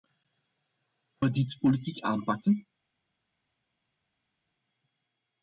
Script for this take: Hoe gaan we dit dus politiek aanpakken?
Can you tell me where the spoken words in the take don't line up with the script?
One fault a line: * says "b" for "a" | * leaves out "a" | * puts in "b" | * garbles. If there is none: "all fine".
* leaves out "gaan"
* leaves out "dus"